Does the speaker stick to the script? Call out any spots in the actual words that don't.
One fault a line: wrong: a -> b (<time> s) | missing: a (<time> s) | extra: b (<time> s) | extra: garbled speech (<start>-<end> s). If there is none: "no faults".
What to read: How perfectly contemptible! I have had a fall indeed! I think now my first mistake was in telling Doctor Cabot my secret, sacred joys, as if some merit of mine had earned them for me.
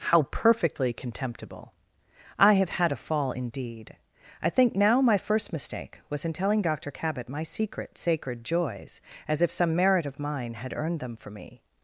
no faults